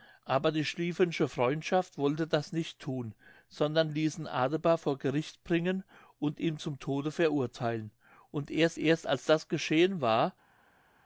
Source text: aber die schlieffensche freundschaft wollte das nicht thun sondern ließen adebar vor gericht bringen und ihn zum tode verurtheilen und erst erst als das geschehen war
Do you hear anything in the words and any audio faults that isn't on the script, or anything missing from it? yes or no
no